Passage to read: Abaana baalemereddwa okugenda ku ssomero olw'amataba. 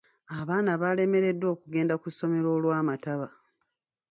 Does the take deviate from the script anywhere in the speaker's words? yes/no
no